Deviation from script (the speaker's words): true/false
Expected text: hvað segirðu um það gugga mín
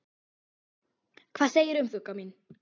true